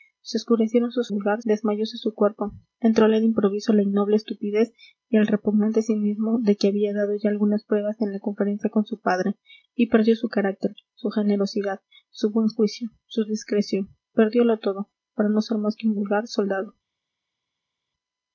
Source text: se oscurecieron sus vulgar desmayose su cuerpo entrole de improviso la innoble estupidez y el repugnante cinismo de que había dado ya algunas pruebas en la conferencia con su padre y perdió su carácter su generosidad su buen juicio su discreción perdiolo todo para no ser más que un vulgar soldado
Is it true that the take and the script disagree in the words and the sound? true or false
false